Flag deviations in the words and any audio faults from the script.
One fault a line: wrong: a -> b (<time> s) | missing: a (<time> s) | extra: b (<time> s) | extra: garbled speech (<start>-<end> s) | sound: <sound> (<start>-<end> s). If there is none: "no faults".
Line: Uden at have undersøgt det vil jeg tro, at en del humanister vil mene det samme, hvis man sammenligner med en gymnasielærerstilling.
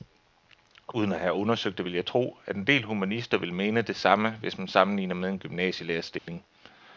sound: dropout (6.2-6.3 s)